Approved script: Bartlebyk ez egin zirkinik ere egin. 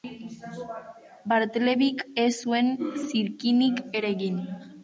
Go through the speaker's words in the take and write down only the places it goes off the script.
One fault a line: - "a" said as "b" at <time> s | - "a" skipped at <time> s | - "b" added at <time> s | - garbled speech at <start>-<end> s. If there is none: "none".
- "egin" said as "zuen" at 2.4 s